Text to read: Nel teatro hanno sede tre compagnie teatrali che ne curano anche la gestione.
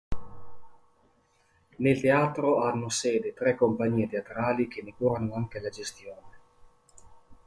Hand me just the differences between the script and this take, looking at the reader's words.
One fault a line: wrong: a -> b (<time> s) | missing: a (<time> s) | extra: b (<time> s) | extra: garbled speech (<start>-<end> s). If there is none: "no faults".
no faults